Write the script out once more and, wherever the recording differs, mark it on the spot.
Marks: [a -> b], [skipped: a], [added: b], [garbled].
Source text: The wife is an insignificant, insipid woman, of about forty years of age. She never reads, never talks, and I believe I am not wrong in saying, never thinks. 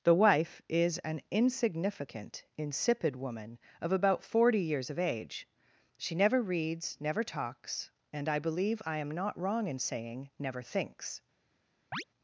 The wife is an insignificant, insipid woman, of about forty years of age. She never reads, never talks, and I believe I am not wrong in saying, never thinks.